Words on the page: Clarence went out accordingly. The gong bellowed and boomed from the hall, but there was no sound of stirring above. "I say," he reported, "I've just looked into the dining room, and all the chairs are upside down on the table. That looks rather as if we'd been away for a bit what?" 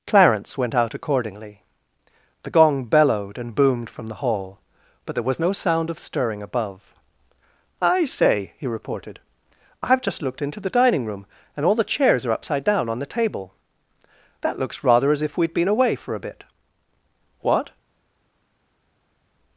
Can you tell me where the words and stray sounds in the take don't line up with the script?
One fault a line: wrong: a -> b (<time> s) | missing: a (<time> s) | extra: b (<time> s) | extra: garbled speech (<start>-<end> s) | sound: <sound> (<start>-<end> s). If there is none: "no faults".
no faults